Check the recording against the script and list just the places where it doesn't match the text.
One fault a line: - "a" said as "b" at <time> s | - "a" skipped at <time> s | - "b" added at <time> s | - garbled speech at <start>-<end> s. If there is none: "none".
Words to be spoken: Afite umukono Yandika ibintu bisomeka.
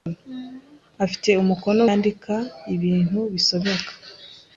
none